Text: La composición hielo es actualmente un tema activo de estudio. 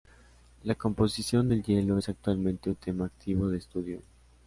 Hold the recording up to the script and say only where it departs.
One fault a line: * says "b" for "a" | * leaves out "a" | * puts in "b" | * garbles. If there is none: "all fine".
* puts in "del"